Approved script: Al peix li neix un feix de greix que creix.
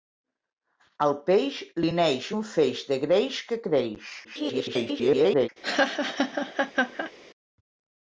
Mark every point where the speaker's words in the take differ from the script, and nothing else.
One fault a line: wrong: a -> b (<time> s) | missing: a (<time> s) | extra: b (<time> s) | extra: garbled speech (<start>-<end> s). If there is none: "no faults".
extra: garbled speech (4.2-5.5 s)